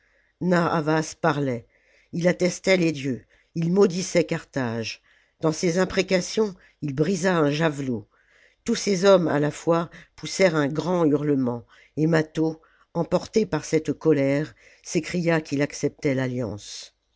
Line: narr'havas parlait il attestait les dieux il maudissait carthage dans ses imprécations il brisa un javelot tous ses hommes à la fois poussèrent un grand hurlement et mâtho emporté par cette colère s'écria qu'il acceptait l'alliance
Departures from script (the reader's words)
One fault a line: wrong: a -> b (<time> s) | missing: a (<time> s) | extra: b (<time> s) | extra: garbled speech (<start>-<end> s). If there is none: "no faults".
no faults